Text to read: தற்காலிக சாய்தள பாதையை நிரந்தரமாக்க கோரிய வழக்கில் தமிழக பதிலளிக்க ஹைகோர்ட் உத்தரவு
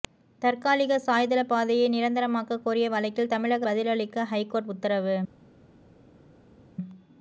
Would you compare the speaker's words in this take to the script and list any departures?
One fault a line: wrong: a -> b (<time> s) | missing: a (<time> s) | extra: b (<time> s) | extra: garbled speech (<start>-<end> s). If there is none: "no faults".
no faults